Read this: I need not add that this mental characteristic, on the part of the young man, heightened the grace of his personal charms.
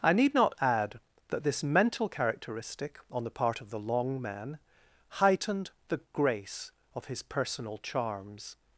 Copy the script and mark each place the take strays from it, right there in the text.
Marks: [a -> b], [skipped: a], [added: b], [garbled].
I need not add that this mental characteristic, on the part of the [young -> long] man, heightened the grace of his personal charms.